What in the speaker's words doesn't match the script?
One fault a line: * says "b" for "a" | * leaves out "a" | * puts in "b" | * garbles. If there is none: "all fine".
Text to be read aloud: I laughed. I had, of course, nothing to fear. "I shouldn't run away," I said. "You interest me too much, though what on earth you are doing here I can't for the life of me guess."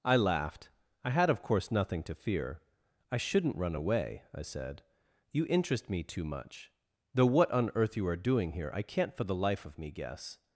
all fine